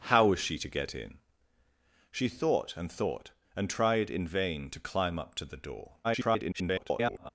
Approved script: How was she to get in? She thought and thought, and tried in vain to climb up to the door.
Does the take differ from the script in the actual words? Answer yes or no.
yes